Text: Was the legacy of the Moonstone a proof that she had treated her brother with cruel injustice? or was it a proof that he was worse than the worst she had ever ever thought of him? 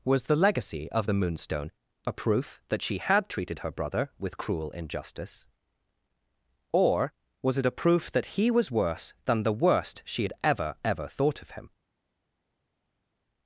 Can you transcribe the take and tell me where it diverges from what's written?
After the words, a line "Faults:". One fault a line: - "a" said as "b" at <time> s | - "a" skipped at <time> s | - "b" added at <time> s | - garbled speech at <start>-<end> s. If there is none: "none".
Was the legacy of the Moonstone a proof that she had treated her brother with cruel injustice? or was it a proof that he was worse than the worst she had ever ever thought of him?
Faults:
none